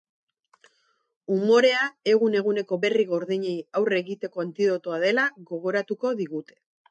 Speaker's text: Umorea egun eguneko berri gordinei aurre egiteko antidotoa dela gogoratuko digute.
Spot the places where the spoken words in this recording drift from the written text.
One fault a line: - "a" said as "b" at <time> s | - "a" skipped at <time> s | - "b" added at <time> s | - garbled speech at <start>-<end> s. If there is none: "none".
none